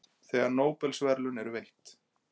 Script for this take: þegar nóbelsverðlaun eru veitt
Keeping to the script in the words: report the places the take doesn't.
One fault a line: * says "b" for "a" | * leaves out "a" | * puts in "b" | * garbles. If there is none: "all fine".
all fine